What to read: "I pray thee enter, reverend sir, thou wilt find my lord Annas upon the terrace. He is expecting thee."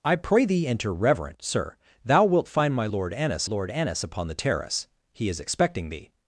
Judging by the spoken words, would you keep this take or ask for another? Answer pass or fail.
fail